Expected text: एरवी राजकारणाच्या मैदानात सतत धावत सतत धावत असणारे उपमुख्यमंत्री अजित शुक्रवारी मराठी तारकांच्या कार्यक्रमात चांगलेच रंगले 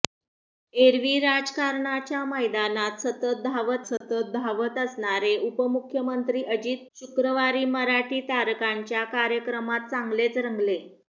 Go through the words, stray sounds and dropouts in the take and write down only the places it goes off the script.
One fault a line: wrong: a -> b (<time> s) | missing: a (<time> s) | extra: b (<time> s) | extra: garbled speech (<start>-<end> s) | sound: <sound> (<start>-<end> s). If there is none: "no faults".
sound: dropout (4.0-4.0 s)